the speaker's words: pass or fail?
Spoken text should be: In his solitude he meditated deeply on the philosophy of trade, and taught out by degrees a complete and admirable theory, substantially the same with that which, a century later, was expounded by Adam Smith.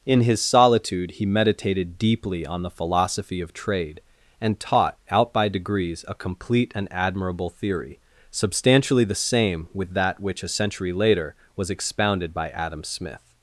pass